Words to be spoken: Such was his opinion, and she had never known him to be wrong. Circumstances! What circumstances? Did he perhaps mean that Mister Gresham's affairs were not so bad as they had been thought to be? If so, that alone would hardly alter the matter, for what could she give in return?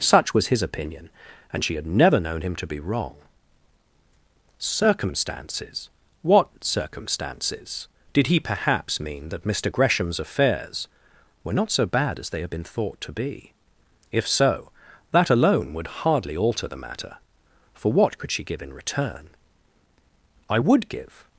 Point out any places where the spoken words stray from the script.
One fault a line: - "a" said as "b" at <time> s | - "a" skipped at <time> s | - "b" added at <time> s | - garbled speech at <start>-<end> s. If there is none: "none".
- "I would give" added at 20.5 s